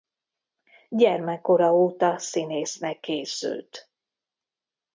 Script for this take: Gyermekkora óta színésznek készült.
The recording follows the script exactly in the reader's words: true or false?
true